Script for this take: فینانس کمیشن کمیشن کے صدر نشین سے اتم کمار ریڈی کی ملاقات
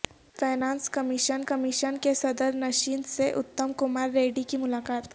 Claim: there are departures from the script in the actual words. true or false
false